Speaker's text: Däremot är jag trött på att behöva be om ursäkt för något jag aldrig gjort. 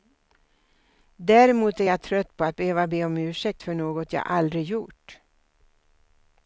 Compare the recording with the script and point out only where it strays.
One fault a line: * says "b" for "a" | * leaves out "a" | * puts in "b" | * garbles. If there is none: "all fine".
all fine